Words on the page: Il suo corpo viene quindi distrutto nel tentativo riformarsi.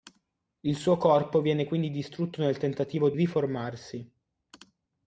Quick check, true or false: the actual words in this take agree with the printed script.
true